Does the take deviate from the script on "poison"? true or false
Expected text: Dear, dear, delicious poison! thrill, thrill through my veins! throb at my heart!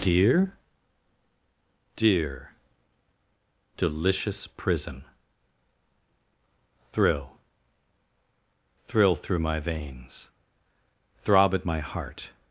true